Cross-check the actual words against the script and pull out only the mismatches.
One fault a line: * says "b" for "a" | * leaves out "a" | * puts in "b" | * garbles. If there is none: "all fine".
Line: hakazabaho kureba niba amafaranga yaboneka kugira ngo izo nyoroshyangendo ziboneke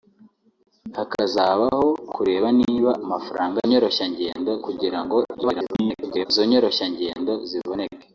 * says "nyoroshyangendo" for "yaboneka"
* garbles